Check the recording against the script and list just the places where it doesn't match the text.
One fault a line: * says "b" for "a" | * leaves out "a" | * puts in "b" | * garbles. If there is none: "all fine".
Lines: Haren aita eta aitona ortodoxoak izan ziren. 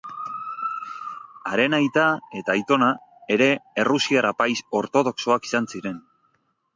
* puts in "ere errusiar apaiz"